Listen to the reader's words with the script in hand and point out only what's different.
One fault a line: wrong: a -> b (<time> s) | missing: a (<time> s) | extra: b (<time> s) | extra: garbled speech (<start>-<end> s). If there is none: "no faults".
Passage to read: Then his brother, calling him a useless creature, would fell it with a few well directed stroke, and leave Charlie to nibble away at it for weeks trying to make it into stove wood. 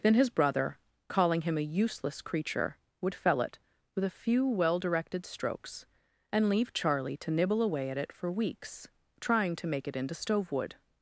wrong: stroke -> strokes (5.2 s)